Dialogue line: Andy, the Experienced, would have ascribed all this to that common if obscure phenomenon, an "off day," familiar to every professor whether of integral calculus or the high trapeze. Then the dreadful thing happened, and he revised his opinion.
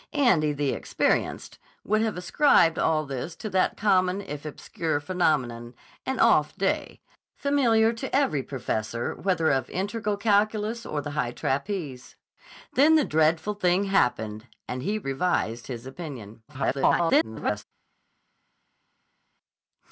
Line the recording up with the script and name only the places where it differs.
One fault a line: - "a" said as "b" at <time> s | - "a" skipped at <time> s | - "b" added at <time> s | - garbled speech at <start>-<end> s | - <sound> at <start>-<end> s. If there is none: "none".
- garbled speech at 16.5-17.6 s